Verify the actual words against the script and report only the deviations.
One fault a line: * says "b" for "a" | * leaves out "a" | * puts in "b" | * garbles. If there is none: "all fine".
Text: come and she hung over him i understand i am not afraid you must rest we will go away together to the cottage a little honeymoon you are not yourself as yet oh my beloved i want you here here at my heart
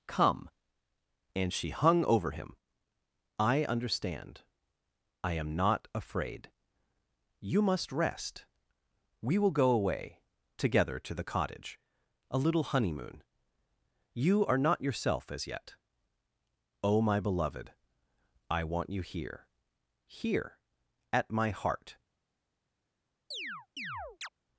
all fine